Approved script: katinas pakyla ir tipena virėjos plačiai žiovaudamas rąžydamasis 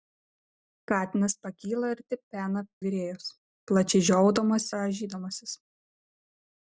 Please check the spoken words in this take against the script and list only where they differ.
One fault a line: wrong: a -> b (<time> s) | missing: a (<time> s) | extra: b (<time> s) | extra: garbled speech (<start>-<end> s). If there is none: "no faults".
no faults